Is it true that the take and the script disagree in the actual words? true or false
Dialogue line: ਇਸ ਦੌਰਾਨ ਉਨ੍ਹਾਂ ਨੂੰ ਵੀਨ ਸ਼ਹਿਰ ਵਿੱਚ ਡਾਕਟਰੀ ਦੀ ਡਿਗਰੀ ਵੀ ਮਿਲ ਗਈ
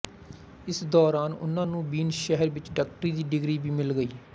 false